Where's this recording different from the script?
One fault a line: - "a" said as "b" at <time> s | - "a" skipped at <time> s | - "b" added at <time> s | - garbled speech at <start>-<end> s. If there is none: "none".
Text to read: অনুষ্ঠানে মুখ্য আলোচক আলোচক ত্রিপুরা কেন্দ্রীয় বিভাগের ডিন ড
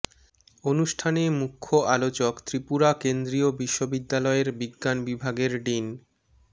- "আলোচক" skipped at 2.3 s
- "বিশ্ববিদ্যালয়ের বিজ্ঞান" added at 3.6 s